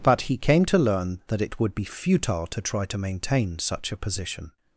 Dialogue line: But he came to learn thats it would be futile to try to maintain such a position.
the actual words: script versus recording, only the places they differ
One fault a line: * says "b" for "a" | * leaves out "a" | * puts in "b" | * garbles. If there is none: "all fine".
* says "that" for "thats"